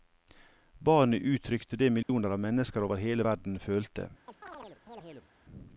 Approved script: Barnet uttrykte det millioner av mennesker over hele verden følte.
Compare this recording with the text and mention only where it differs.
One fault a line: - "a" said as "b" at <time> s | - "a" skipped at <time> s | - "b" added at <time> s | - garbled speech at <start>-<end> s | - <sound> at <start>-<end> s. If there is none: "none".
- dropout at 2.0-2.1 s
- chirp at 4.3-5.3 s